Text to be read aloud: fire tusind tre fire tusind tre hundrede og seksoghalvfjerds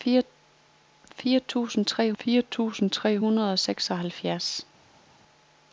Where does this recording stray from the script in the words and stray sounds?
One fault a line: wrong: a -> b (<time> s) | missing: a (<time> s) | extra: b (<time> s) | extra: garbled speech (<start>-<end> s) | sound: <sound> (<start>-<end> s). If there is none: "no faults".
no faults